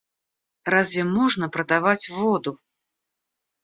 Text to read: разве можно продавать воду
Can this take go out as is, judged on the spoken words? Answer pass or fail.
pass